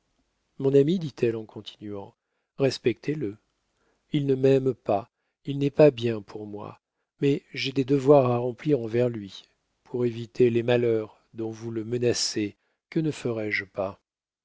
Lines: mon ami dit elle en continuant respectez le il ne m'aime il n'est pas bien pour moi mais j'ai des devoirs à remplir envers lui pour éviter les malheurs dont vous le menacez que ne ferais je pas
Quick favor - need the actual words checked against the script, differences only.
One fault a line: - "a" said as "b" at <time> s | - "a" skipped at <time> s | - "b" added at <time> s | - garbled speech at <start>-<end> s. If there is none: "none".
- "pas" added at 4.7 s